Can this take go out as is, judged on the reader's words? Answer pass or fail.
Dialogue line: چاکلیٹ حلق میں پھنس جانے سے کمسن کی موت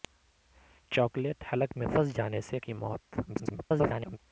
fail